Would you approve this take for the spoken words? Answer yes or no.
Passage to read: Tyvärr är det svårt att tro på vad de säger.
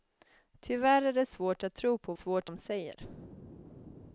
no